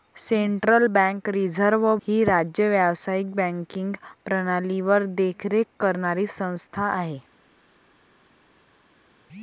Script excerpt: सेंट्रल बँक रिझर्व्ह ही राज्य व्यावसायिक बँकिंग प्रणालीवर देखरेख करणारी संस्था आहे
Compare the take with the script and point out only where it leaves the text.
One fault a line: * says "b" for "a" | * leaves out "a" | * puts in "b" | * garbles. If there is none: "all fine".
all fine